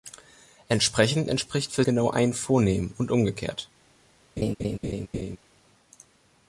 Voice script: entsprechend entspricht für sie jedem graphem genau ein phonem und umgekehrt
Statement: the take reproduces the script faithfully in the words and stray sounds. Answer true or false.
false